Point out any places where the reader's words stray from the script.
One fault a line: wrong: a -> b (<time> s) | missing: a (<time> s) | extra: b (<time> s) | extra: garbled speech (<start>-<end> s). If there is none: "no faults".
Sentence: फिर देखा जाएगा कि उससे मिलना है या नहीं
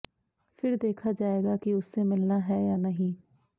no faults